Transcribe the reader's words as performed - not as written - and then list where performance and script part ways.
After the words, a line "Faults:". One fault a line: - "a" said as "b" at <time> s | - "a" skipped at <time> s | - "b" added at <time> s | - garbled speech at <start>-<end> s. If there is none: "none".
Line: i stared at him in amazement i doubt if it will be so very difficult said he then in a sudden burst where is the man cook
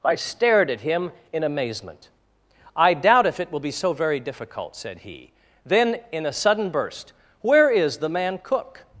i stared at him in amazement i doubt if it will be so very difficult said he then in a sudden burst where is the man cook
Faults:
none